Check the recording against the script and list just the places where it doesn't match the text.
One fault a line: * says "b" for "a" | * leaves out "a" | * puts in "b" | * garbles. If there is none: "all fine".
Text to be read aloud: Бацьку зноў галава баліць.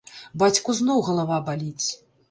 all fine